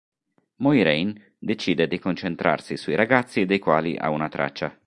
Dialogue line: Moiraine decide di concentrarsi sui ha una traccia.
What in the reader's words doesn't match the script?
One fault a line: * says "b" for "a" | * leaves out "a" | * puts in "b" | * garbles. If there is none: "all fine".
* puts in "ragazzi dei quali"